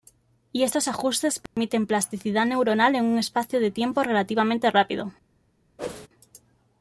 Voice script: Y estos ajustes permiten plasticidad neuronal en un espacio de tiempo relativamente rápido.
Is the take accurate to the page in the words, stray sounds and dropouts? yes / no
no